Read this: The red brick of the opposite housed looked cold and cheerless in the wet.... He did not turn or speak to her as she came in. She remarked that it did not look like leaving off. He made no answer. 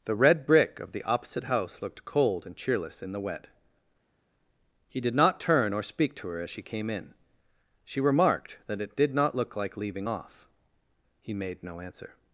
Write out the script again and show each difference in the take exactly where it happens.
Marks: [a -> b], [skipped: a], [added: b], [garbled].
The red brick of the opposite [housed -> house] looked cold and cheerless in the wet.... He did not turn or speak to her as she came in. She remarked that it did not look like leaving off. He made no answer.